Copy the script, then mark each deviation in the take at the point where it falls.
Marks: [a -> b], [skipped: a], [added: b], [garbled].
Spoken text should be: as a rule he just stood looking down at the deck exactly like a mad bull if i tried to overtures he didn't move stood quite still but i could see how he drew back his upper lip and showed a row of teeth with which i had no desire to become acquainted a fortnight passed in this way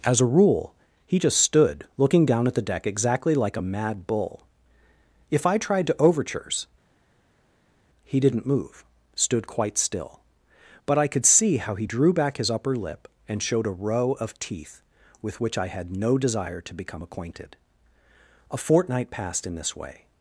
as a rule he just stood looking down at the deck exactly like a mad bull if i tried to overtures he didn't move stood quite still but i could see how he drew back his upper lip and showed a row of teeth with which i had no desire to become acquainted a fortnight passed in this way